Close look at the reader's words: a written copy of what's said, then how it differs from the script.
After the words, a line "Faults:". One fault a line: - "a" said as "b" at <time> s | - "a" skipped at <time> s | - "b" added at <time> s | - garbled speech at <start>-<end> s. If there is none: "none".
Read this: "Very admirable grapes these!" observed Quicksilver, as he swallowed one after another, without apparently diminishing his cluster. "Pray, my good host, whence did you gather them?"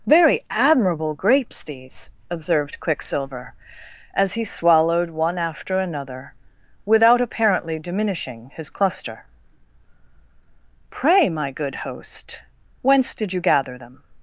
"Very admirable grapes these!" observed Quicksilver, as he swallowed one after another, without apparently diminishing his cluster. "Pray, my good host, whence did you gather them?"
Faults:
none